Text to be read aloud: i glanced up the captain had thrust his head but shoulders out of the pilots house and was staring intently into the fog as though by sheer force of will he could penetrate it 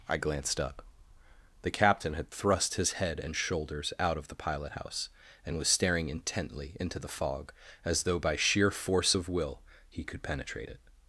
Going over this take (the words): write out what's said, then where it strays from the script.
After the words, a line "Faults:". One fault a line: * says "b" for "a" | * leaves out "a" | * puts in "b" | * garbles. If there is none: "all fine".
i glanced up the captain had thrust his head and shoulders out of the pilot house and was staring intently into the fog as though by sheer force of will he could penetrate it
Faults:
* says "and" for "but"
* says "pilot" for "pilots"